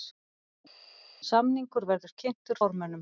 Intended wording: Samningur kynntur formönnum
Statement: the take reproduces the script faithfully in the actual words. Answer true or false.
false